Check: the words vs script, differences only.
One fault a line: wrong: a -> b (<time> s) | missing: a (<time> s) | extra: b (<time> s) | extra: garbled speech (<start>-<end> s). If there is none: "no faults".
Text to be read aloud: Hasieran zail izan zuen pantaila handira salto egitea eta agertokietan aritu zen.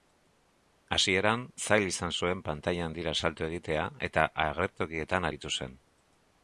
no faults